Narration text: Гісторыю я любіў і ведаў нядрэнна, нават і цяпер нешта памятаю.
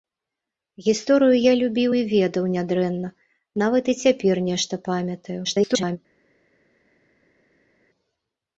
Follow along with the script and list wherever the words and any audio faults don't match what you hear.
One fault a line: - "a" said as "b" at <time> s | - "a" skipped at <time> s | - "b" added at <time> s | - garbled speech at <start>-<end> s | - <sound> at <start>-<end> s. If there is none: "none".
- garbled speech at 5.4-6.0 s